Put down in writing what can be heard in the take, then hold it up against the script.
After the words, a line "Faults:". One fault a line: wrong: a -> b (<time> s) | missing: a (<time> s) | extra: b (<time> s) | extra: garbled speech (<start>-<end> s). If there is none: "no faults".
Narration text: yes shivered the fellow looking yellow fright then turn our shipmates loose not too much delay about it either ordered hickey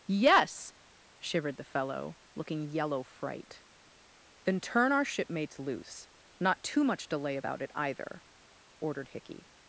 yes shivered the fellow looking yellow fright then turn our shipmates loose not too much delay about it either ordered hickey
Faults:
no faults